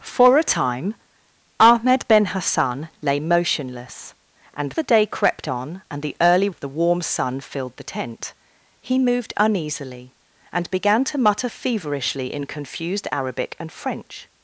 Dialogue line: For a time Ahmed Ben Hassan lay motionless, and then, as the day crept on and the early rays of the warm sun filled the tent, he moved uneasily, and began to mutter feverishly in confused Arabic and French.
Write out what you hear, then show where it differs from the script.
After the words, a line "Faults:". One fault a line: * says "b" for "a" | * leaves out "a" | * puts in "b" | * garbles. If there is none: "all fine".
For a time Ahmed Ben Hassan lay motionless, and the day crept on and the early of the warm sun filled the tent, he moved uneasily, and began to mutter feverishly in confused Arabic and French.
Faults:
* leaves out "then as"
* leaves out "rays"